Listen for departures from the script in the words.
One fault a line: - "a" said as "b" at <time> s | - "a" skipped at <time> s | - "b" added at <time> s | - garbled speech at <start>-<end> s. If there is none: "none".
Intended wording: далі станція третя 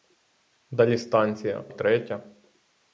none